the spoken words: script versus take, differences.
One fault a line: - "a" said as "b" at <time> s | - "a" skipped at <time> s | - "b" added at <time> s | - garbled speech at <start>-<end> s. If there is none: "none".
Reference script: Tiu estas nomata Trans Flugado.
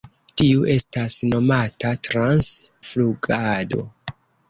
none